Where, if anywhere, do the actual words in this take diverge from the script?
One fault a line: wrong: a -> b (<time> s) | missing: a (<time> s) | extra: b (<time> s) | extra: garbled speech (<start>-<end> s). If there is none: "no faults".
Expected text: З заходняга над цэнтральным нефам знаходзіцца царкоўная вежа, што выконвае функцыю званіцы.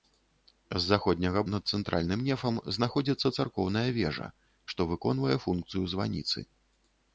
no faults